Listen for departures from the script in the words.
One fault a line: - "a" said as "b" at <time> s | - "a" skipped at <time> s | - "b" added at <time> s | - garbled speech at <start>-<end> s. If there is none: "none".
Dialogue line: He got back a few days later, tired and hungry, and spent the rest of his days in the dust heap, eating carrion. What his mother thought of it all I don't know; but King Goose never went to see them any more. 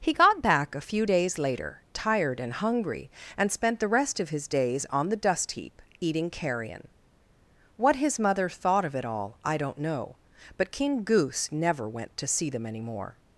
- "in" said as "on" at 4.9 s